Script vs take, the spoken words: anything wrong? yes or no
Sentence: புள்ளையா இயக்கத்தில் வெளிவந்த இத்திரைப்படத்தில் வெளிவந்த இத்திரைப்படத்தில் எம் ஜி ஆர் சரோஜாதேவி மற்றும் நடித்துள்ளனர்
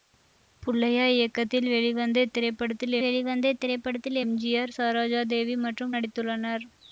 no